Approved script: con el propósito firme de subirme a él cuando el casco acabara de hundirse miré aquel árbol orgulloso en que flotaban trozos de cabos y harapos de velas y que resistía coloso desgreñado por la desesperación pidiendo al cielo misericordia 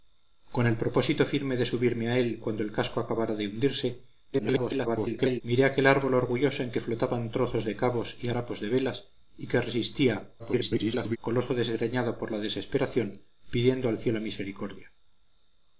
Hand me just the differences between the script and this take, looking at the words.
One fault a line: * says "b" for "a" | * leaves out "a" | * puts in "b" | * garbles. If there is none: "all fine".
* garbles
* garbles